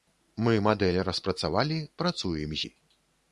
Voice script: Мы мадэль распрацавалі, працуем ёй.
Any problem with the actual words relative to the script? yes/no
no